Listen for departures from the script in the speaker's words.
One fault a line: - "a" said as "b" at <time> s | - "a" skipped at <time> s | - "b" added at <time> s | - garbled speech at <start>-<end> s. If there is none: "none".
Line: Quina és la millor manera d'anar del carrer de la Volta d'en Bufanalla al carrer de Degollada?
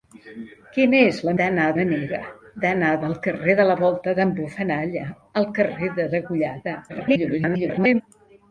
- "millor" said as "d'anar" at 1.4 s
- garbled speech at 6.9-8.0 s